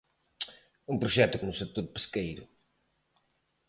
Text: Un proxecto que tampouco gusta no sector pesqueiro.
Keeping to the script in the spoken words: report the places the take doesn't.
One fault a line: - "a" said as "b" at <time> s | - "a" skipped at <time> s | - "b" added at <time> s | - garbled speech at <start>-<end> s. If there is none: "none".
- "que tampouco gusta" skipped at 1.4 s